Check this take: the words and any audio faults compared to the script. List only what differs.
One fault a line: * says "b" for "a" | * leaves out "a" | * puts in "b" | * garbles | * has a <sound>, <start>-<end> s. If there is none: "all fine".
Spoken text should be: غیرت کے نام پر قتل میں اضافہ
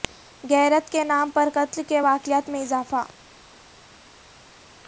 * puts in "کے واقعات"